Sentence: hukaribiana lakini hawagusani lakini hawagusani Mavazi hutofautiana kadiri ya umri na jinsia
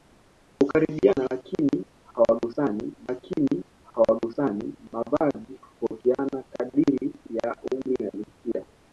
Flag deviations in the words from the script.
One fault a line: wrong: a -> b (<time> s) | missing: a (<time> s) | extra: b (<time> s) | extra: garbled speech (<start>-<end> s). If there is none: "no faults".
no faults